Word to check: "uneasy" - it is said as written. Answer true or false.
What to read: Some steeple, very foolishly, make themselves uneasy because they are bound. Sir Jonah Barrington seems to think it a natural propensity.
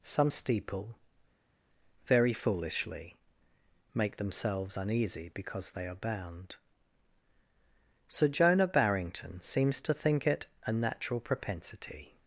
true